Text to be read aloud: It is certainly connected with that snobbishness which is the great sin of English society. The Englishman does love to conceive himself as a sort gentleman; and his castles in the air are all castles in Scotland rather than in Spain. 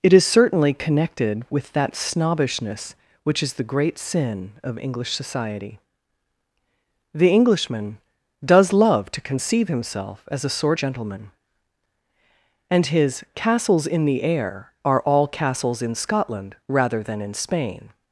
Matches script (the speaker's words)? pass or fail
pass